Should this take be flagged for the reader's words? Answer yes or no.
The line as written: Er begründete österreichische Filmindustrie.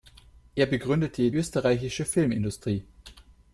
no